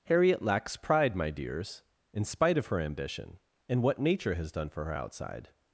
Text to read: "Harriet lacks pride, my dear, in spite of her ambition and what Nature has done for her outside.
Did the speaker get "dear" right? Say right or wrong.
wrong